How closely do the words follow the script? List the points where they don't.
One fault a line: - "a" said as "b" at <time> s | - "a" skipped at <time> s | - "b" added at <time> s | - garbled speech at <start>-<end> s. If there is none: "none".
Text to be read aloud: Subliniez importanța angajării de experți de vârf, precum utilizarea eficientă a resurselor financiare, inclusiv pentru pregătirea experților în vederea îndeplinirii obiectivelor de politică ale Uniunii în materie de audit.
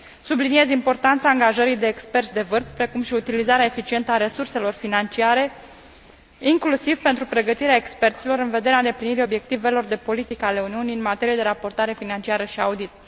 - "și" added at 3.0 s
- "raportare financiară și" added at 11.4 s